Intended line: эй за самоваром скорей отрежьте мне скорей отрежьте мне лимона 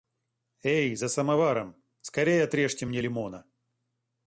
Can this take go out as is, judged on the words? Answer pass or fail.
fail